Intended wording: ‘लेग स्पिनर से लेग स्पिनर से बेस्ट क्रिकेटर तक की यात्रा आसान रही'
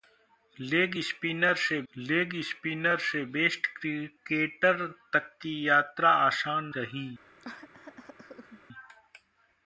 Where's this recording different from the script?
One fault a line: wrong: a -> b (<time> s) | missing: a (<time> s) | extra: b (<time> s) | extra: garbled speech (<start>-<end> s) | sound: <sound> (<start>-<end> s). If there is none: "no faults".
sound: cough (7.4-8.6 s)